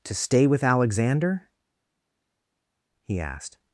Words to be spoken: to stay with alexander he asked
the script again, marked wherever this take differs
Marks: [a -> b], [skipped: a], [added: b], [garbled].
to stay with alexander he asked